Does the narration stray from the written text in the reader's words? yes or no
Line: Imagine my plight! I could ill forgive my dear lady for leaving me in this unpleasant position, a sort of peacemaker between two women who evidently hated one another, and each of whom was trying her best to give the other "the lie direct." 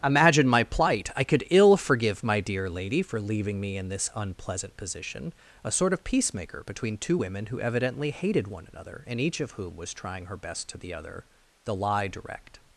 yes